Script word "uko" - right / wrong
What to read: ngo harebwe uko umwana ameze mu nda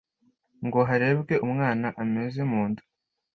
wrong